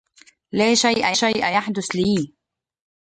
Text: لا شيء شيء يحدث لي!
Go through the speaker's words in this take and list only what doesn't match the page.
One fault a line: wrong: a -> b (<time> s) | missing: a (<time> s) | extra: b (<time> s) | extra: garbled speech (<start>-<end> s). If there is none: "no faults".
no faults